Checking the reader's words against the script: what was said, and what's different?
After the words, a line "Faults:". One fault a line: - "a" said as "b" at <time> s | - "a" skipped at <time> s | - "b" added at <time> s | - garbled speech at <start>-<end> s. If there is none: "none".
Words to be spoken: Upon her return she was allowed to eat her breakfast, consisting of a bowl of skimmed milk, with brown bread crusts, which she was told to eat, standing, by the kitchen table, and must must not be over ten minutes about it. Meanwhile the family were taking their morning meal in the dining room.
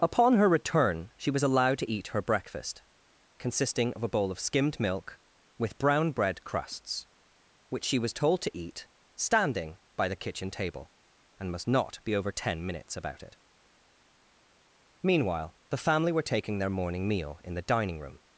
Upon her return she was allowed to eat her breakfast, consisting of a bowl of skimmed milk, with brown bread crusts, which she was told to eat, standing, by the kitchen table, and must not be over ten minutes about it. Meanwhile the family were taking their morning meal in the dining room.
Faults:
- "must" skipped at 11.7 s